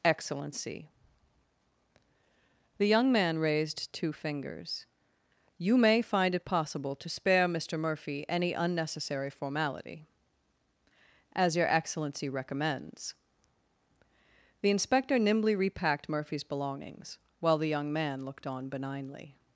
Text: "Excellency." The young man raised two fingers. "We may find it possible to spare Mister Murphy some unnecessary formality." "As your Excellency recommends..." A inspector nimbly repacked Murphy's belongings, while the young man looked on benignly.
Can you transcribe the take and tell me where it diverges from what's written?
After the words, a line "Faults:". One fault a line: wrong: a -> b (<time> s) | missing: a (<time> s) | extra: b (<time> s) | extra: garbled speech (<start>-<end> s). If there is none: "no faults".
"Excellency." The young man raised two fingers. "You may find it possible to spare Mister Murphy any unnecessary formality." "As your Excellency recommends..." The inspector nimbly repacked Murphy's belongings, while the young man looked on benignly.
Faults:
wrong: We -> You (5.6 s)
wrong: some -> any (8.3 s)
wrong: A -> The (14.6 s)